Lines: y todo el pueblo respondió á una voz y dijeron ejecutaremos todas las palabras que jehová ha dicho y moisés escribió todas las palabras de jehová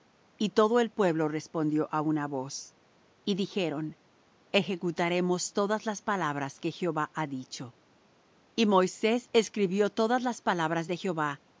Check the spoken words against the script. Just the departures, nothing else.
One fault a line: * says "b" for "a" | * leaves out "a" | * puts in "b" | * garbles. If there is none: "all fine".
all fine